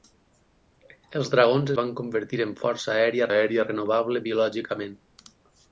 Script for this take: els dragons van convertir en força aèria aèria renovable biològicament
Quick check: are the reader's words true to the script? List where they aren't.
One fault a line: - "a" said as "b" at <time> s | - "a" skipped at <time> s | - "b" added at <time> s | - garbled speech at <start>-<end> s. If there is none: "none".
none